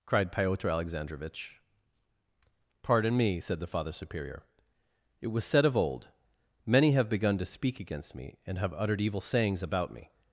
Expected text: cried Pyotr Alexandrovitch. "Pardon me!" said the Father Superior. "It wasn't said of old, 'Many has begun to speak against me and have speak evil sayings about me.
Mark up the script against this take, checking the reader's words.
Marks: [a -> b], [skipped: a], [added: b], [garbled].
cried Pyotr Alexandrovitch. "Pardon me!" said the Father Superior. "It [wasn't -> was] said of old, 'Many [has -> have] begun to speak against me and have [speak -> uttered] evil sayings about me.